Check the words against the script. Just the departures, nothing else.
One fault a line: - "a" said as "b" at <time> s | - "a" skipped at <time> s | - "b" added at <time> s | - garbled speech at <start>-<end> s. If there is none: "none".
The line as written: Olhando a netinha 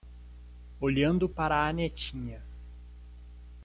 - "para" added at 1.3 s